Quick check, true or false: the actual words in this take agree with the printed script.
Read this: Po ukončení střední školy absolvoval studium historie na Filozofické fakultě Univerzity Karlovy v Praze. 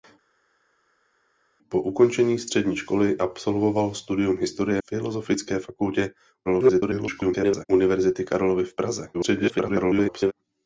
false